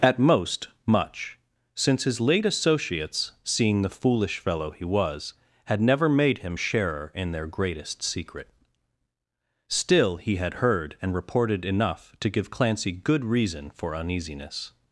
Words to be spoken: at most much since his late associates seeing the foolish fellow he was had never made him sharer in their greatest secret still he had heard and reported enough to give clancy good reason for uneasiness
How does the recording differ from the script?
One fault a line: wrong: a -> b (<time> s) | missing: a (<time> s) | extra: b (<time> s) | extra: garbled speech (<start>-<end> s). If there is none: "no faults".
no faults